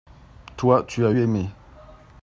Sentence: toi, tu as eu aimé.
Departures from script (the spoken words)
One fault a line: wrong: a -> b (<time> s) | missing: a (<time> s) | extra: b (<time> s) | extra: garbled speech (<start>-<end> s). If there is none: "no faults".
missing: eu (1.1 s)